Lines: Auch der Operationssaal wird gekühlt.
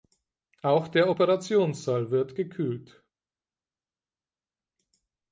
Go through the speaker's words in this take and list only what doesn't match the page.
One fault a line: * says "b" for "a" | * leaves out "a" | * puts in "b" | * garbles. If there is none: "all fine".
all fine